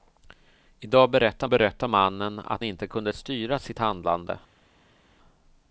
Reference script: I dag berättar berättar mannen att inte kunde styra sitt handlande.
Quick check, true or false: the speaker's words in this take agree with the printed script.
true